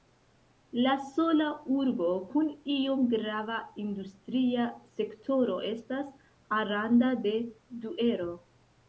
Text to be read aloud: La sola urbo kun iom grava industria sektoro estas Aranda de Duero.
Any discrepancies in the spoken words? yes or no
no